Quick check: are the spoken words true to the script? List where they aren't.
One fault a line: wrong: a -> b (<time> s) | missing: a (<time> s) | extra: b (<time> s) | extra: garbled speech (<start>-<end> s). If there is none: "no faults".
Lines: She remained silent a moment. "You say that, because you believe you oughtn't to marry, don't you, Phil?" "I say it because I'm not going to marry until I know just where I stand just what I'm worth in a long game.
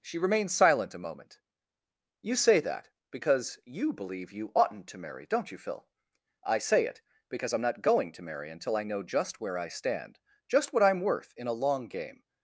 no faults